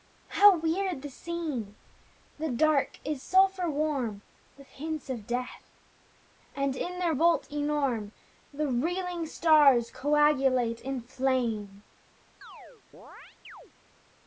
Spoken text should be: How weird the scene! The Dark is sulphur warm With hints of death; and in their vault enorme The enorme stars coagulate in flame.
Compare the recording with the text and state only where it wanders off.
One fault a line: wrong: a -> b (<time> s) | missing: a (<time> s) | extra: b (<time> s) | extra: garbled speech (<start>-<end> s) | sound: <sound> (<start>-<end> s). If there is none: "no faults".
wrong: enorme -> reeling (8.7 s)
sound: chirp (12.4-13.7 s)